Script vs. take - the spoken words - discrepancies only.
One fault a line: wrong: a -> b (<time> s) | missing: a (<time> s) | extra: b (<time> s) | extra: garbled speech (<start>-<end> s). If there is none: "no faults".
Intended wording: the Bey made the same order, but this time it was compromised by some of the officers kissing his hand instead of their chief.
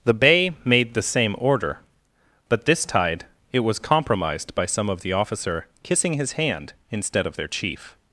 wrong: time -> tide (2.9 s)
wrong: officers -> officer (5.1 s)